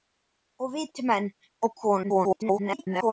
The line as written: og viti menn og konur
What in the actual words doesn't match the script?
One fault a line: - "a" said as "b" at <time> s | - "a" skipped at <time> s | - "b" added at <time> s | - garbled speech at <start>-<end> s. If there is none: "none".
- garbled speech at 2.0-3.1 s